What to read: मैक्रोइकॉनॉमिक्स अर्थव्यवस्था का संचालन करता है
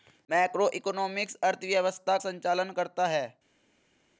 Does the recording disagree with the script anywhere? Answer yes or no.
yes